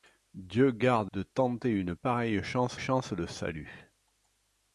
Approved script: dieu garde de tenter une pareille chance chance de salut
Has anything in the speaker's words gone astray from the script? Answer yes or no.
no